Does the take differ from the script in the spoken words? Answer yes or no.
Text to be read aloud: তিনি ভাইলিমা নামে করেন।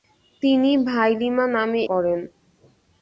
no